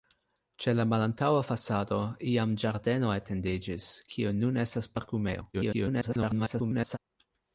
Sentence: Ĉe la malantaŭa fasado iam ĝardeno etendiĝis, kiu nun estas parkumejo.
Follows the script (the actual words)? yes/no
no